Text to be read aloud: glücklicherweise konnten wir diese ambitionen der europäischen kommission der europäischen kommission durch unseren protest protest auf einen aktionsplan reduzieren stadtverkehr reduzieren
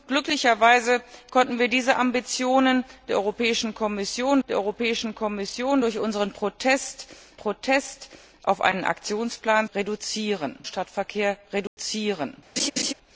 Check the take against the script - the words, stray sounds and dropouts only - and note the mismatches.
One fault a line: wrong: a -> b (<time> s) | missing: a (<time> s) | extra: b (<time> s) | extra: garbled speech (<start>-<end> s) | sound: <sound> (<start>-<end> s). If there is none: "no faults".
sound: dropout (11.7-11.8 s)
sound: laugh (12.6-12.9 s)